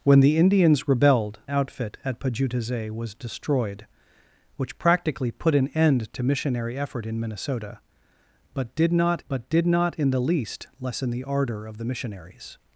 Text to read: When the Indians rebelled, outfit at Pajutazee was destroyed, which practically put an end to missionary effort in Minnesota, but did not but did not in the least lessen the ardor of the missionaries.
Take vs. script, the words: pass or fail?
pass